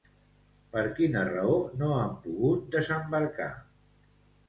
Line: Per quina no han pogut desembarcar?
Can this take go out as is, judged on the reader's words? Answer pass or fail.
fail